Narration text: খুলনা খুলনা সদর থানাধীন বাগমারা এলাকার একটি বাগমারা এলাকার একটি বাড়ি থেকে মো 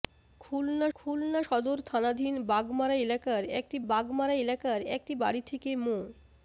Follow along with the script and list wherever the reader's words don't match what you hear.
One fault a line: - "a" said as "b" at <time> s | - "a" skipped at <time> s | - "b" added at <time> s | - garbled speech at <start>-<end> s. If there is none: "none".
none